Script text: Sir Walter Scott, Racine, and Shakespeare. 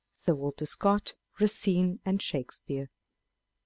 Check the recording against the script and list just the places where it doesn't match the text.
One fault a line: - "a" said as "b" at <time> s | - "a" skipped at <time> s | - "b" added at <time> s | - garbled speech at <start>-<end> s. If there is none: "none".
none